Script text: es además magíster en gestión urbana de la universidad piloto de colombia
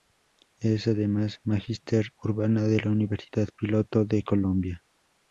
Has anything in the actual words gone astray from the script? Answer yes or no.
yes